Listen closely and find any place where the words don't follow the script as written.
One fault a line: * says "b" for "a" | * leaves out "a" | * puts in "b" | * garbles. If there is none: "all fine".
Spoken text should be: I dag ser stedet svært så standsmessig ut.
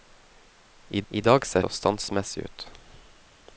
* puts in "I"
* leaves out "stedet svært"